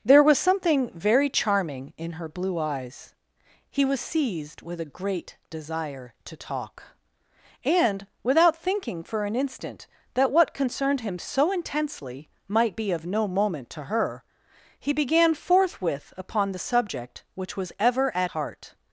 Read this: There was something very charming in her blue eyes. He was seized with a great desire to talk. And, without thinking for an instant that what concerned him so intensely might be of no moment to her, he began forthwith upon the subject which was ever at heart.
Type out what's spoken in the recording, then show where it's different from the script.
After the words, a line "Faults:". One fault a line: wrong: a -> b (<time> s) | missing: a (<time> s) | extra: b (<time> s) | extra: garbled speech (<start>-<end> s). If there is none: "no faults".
There was something very charming in her blue eyes. He was seized with a great desire to talk. And, without thinking for an instant that what concerned him so intensely might be of no moment to her, he began forthwith upon the subject which was ever at heart.
Faults:
no faults